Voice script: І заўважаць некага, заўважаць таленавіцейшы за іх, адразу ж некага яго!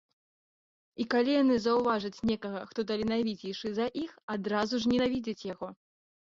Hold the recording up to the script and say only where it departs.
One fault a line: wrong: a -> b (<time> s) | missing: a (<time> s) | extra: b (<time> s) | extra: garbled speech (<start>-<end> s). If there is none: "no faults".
extra: калі яны (1.1 s)
wrong: заўважаць -> хто (2.7 s)
wrong: некага -> ненавідзяць (4.9 s)